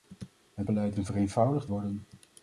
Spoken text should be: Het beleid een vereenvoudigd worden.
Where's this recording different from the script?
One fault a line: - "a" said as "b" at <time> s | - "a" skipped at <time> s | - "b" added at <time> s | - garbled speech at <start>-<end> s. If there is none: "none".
none